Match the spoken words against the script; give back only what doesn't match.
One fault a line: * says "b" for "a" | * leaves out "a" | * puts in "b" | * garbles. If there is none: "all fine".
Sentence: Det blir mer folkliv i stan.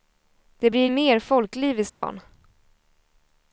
all fine